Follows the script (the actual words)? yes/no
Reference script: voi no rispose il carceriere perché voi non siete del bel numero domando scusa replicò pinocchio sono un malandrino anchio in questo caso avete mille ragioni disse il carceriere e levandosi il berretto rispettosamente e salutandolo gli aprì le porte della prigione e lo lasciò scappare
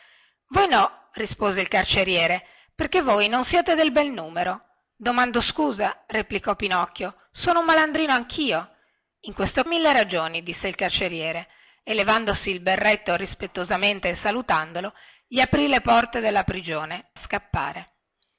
no